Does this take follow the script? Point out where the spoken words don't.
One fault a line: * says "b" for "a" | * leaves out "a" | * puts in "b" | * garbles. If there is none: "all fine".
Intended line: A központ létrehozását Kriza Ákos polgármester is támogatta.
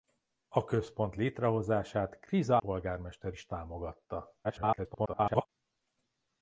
* leaves out "Ákos"
* garbles